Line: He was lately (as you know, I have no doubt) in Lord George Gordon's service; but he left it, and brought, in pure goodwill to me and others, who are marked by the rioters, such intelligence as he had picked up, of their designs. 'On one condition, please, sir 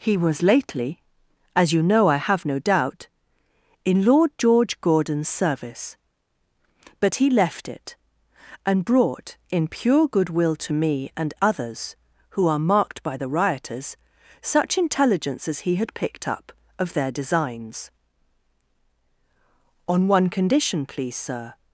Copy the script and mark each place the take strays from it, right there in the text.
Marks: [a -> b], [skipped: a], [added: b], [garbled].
He was lately (as you know, I have no doubt) in Lord George Gordon's service; but he left it, and brought, in pure goodwill to me and others, who are marked by the rioters, such intelligence as he had picked up, of their designs. 'On one condition, please, sir